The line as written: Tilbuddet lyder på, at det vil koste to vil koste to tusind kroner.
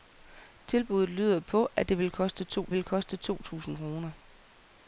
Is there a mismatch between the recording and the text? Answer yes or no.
no